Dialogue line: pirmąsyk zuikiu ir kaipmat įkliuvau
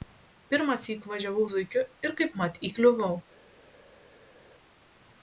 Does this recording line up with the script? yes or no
no